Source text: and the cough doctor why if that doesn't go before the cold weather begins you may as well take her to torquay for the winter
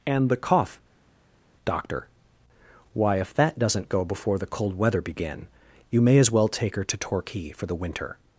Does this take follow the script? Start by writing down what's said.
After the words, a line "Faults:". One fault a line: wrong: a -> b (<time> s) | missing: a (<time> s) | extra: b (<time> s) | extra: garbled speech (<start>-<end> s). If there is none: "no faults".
and the cough doctor why if that doesn't go before the cold weather begin you may as well take her to torquay for the winter
Faults:
wrong: begins -> begin (5.0 s)